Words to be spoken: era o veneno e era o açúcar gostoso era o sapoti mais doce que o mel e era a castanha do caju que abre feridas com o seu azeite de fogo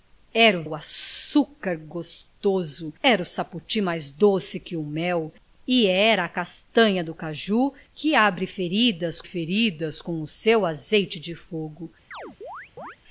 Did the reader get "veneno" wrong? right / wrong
wrong